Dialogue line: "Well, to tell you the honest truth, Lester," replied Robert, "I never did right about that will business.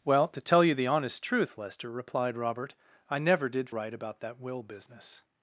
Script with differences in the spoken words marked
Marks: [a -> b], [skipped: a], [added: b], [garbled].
"Well, to tell you the honest truth, Lester," replied Robert, "I never did right about that will business.